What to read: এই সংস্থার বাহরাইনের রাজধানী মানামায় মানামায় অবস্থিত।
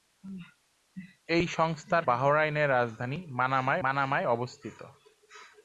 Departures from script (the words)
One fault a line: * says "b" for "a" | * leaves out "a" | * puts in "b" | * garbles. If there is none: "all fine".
all fine